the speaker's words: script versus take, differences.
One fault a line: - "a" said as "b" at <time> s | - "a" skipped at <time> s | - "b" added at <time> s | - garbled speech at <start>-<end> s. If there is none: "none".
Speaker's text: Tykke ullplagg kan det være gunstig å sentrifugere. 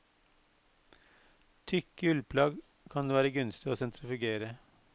none